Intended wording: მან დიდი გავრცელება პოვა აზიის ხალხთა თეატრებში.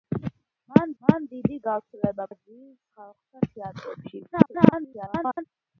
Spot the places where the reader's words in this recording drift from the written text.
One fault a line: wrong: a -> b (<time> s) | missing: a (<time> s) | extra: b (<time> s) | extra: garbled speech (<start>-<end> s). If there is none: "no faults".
extra: მან (1.0 s)
missing: პოვა (2.3 s)
extra: garbled speech (4.3-5.4 s)